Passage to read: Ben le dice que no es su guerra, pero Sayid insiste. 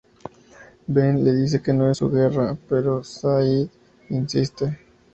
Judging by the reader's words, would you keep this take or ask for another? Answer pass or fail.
pass